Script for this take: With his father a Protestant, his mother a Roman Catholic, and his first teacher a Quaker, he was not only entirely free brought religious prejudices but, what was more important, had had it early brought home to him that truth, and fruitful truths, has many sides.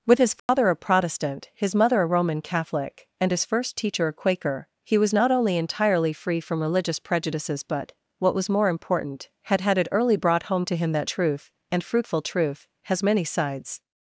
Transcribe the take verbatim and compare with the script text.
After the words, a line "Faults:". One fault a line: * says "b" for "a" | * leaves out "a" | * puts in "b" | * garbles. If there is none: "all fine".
With his father a Protestant, his mother a Roman Catholic, and his first teacher a Quaker, he was not only entirely free from religious prejudices but, what was more important, had had it early brought home to him that truth, and fruitful truth, has many sides.
Faults:
* says "from" for "brought"
* says "truth" for "truths"